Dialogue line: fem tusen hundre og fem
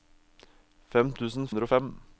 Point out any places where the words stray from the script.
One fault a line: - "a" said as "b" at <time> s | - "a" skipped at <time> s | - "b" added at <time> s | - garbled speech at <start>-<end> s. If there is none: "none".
none